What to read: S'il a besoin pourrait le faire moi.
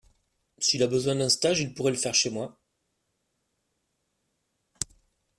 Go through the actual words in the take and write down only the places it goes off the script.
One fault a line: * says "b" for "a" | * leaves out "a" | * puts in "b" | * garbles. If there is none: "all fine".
* puts in "d'un stage il"
* puts in "chez"